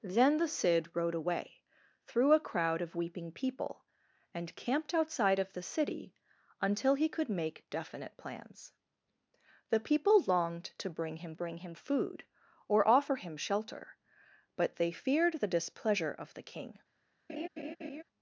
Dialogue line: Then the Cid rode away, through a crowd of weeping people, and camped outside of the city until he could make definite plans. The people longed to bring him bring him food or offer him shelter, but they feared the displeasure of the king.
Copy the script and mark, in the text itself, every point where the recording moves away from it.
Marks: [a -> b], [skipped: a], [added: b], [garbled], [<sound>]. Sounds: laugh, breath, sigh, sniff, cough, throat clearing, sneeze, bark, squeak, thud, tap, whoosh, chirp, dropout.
Then the Cid rode away, through a crowd of weeping people, and camped outside of the city until he could make definite plans. The people longed to bring him bring him food or offer him shelter, but they feared the displeasure of the king. [laugh]